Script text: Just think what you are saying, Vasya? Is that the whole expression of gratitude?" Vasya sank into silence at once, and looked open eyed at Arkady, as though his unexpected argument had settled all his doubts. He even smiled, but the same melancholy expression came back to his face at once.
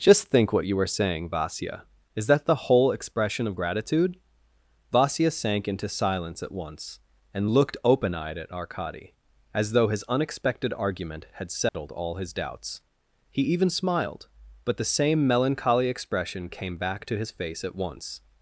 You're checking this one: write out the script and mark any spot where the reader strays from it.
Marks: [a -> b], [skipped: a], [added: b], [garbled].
Just think what you [are -> were] saying, Vasya? Is that the whole expression of gratitude?" Vasya sank into silence at once, and looked open eyed at Arkady, as though his unexpected argument had settled all his doubts. He even smiled, but the same melancholy expression came back to his face at once.